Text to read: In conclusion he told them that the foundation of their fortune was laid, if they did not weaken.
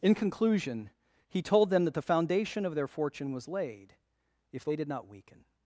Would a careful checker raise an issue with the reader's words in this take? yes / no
no